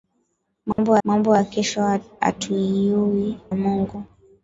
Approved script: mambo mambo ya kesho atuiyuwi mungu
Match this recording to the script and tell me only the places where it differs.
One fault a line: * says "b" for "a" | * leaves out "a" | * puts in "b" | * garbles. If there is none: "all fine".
all fine